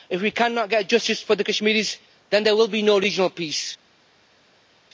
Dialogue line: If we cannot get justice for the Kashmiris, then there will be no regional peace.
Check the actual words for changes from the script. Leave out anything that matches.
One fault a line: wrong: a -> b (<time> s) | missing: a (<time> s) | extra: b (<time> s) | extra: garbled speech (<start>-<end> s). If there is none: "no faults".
no faults